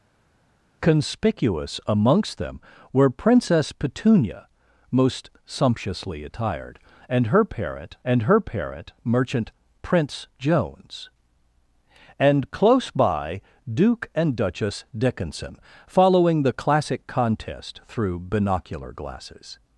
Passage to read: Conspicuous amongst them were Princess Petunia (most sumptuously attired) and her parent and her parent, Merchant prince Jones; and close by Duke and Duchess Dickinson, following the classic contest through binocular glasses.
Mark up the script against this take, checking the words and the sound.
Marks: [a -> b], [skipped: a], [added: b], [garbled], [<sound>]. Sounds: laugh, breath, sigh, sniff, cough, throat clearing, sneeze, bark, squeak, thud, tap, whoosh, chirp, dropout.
Conspicuous amongst them were Princess Petunia (most sumptuously attired) and her parent and her parent, Merchant prince Jones; and close by Duke and Duchess Dickinson, following the classic contest through binocular glasses.